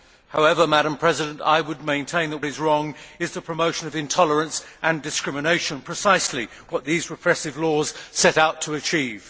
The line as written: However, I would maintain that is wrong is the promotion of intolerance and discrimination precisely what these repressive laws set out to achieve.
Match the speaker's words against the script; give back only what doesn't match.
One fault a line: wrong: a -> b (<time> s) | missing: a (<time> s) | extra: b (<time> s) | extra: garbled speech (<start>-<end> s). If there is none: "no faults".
no faults